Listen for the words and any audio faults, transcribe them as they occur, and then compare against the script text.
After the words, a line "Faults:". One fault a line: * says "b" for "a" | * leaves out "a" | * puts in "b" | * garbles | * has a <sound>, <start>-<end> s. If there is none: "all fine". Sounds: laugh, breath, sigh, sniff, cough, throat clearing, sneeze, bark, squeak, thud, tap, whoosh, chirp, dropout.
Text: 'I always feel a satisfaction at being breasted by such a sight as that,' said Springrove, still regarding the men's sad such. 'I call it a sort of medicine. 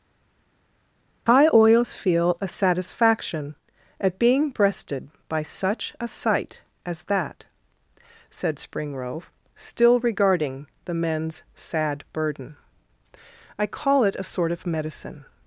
'I always feel a satisfaction at being breasted by such a sight as that,' said Springrove, still regarding the men's sad burden. 'I call it a sort of medicine.
Faults:
* says "burden" for "such"